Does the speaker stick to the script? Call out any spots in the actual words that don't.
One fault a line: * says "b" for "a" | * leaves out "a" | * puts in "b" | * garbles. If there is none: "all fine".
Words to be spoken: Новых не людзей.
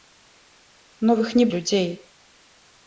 all fine